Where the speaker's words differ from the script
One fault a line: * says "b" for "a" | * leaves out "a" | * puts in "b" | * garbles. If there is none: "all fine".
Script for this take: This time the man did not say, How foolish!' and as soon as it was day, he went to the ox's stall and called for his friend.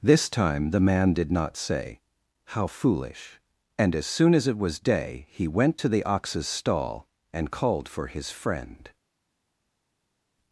all fine